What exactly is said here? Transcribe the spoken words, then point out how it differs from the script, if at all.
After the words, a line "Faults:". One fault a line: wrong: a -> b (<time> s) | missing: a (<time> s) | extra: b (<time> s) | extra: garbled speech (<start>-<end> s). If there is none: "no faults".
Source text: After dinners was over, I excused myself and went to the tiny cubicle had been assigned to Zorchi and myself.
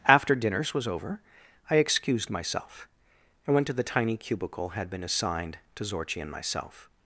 After dinners was over, I excused myself and went to the tiny cubicle had been assigned to Zorchi and myself.
Faults:
no faults